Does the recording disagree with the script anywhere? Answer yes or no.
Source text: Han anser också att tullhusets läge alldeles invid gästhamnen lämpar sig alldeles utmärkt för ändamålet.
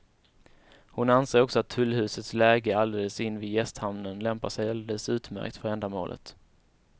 yes